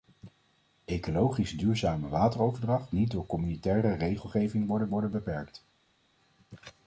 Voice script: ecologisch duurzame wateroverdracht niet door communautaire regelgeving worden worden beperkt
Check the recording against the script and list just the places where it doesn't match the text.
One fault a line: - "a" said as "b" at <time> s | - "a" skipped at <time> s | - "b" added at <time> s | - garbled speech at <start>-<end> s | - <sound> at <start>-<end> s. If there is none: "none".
none